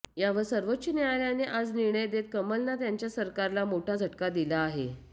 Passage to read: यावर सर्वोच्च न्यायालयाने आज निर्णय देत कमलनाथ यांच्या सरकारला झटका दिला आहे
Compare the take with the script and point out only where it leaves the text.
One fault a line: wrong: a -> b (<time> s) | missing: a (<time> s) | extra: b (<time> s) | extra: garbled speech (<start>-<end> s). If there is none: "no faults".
extra: मोठा (3.7 s)